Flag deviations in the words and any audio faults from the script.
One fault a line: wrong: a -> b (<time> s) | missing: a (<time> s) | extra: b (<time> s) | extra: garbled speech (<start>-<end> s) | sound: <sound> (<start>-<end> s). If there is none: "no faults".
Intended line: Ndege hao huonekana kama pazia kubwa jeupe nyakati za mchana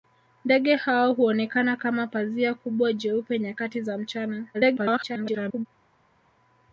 extra: garbled speech (4.5-5.7 s)